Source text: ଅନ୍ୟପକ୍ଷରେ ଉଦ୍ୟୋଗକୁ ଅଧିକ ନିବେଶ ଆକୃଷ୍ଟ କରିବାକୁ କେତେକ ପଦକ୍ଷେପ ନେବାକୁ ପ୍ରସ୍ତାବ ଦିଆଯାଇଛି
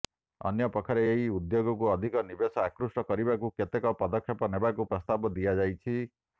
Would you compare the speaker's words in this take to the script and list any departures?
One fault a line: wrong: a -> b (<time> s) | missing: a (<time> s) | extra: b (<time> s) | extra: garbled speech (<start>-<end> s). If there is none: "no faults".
extra: ଏହି (1.1 s)